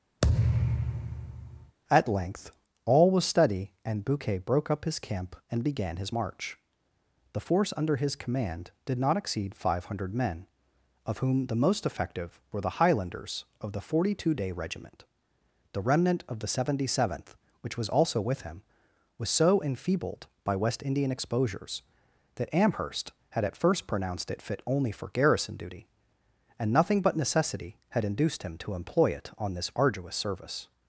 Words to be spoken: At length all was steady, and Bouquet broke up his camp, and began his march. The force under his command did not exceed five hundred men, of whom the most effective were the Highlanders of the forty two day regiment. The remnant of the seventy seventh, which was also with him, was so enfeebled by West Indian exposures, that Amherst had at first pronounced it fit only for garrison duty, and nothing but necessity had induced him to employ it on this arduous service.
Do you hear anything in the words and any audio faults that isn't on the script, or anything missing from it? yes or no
yes